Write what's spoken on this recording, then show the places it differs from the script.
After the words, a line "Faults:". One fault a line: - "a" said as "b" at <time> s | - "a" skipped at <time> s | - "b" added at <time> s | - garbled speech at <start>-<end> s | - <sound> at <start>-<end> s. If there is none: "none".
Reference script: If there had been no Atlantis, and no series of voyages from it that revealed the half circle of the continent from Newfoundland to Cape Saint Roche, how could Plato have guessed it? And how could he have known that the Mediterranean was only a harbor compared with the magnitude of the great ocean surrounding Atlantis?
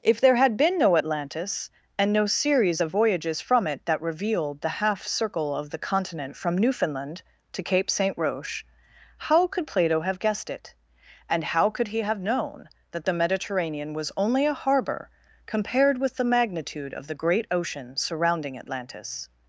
If there had been no Atlantis, and no series of voyages from it that revealed the half circle of the continent from Newfoundland to Cape Saint Roche, how could Plato have guessed it? And how could he have known that the Mediterranean was only a harbor compared with the magnitude of the great ocean surrounding Atlantis?
Faults:
none